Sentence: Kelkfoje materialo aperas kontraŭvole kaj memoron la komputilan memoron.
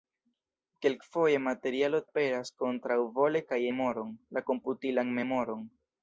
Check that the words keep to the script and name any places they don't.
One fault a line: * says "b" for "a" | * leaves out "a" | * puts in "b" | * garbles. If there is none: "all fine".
all fine